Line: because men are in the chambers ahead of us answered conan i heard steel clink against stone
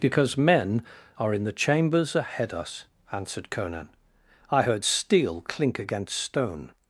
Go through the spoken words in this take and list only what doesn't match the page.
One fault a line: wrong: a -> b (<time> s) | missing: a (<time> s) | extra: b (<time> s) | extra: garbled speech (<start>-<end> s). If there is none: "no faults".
missing: of (2.5 s)